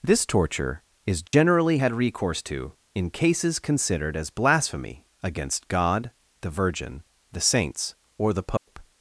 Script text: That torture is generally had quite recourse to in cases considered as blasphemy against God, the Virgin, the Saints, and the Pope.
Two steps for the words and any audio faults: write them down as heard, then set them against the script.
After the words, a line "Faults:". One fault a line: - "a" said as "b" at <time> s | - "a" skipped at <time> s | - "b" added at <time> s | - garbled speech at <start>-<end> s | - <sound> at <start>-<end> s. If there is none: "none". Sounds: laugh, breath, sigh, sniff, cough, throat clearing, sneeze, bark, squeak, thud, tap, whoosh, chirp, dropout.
This torture is generally had recourse to in cases considered as blasphemy against God, the Virgin, the Saints, or the Pope.
Faults:
- "That" said as "This" at 0.0 s
- dropout at 1.3-1.3 s
- "quite" skipped at 1.9 s
- "and" said as "or" at 8.2 s
- dropout at 8.6-8.7 s